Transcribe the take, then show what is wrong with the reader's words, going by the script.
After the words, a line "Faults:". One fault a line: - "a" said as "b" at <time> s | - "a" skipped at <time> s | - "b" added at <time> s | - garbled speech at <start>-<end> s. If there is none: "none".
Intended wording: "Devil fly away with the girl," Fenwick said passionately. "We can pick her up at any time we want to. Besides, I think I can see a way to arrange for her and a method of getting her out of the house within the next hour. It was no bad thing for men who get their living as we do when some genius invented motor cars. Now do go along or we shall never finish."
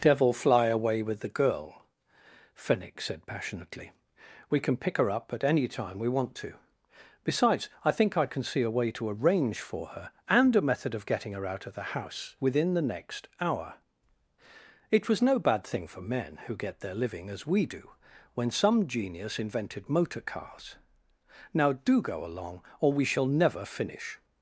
"Devil fly away with the girl," Fenwick said passionately. "We can pick her up at any time we want to. Besides, I think I can see a way to arrange for her and a method of getting her out of the house within the next hour. It was no bad thing for men who get their living as we do when some genius invented motor cars. Now do go along or we shall never finish."
Faults:
none